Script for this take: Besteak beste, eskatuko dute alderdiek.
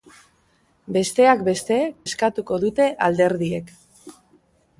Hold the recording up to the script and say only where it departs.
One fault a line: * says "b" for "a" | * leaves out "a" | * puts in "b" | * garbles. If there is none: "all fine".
all fine